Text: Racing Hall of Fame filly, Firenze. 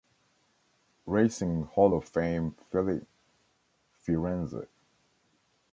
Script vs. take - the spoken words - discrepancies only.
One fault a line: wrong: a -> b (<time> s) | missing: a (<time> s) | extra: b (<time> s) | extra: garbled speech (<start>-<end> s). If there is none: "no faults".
no faults